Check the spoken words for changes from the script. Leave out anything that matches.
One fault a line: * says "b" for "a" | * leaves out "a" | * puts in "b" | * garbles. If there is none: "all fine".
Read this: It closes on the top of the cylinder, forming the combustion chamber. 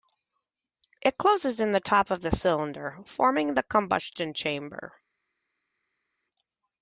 * says "in" for "on"